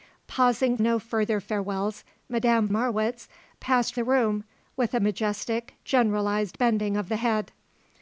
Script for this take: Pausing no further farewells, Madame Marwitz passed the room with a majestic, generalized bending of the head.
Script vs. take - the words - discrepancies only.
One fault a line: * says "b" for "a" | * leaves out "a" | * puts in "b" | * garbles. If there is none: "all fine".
all fine